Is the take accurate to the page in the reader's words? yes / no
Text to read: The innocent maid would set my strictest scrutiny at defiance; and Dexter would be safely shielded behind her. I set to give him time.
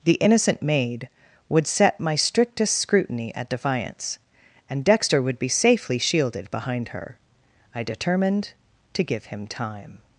no